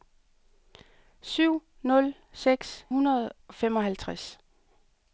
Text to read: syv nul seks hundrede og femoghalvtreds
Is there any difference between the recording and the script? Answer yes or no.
no